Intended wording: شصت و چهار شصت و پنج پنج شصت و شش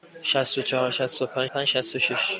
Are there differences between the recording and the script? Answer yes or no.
no